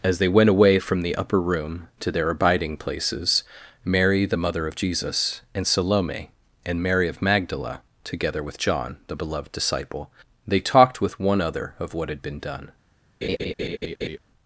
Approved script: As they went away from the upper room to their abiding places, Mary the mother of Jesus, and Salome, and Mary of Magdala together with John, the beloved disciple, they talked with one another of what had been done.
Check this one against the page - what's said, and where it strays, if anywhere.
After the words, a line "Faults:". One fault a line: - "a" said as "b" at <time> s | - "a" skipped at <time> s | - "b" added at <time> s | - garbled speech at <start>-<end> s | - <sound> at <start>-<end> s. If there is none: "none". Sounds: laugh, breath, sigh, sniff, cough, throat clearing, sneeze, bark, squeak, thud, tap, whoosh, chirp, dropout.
As they went away from the upper room to their abiding places, Mary the mother of Jesus, and Salome, and Mary of Magdala together with John, the beloved disciple, they talked with one other of what had been done.
Faults:
- "another" said as "other" at 11.4 s
- laugh at 13.2-14.2 s